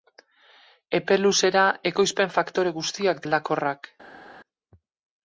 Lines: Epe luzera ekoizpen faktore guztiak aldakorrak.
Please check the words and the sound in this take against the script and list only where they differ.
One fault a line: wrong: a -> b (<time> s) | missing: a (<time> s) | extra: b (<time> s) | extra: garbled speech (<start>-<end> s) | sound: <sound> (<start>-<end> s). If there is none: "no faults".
no faults